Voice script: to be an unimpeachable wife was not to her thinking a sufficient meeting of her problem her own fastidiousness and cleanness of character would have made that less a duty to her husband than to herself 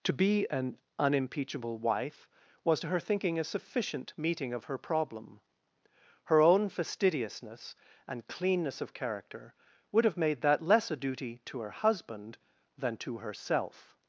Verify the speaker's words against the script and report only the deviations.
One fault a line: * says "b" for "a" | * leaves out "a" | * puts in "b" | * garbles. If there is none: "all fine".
* leaves out "not"